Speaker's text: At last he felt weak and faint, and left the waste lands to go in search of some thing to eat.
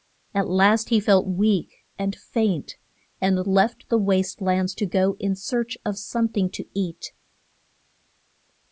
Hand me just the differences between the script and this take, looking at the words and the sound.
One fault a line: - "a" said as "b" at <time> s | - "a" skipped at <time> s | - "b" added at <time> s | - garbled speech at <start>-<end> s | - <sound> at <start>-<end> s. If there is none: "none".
none